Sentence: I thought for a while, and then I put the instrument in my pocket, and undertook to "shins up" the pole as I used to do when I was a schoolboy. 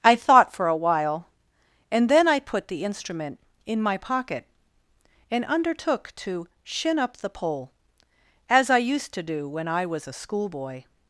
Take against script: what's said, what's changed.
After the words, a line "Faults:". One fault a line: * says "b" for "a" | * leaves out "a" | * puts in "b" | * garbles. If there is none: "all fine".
I thought for a while, and then I put the instrument in my pocket, and undertook to "shin up" the pole as I used to do when I was a schoolboy.
Faults:
* says "shin" for "shins"